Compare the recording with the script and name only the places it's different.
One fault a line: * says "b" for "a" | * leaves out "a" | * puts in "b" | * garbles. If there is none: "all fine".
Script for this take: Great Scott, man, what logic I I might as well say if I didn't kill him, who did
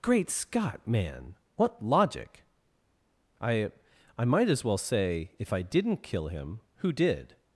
all fine